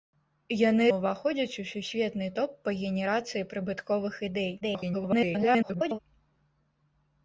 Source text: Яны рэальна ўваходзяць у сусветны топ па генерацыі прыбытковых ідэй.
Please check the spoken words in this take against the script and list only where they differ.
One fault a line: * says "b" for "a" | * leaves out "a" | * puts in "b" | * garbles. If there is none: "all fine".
* leaves out "рэальна"
* garbles